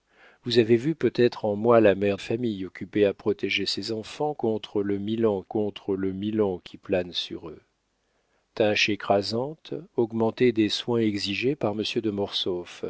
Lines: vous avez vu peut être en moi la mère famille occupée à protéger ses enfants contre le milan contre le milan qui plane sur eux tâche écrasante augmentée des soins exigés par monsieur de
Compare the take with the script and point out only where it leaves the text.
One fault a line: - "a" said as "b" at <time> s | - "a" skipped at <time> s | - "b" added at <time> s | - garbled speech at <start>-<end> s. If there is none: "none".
none